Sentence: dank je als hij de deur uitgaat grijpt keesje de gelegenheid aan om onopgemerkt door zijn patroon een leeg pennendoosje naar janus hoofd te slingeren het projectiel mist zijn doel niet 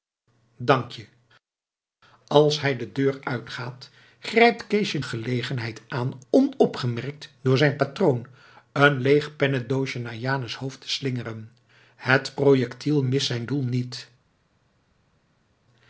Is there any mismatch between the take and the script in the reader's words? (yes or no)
yes